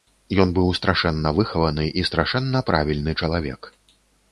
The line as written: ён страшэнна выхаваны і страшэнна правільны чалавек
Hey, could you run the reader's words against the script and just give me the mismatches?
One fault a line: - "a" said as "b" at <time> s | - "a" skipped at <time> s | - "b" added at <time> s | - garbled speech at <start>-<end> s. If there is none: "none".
- "быў" added at 0.6 s